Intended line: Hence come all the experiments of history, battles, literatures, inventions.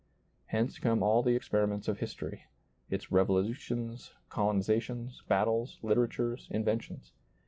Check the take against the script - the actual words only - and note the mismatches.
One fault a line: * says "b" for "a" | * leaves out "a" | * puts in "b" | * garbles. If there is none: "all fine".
* puts in "its revolutions colonizations"